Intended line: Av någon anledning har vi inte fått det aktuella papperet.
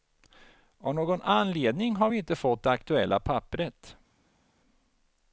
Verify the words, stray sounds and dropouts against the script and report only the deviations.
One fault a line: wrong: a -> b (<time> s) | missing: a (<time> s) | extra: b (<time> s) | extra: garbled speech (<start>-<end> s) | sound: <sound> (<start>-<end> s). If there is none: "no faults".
no faults